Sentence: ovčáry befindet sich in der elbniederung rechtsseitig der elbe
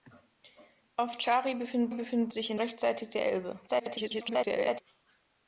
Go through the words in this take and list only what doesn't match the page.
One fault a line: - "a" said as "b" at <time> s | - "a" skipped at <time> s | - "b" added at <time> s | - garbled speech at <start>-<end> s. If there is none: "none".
- "befindet" added at 1.9 s
- "der elbniederung" skipped at 2.6 s
- garbled speech at 3.7-4.8 s